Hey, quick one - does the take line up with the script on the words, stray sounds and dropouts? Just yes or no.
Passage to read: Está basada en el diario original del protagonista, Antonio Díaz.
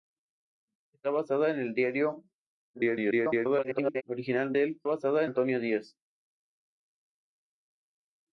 no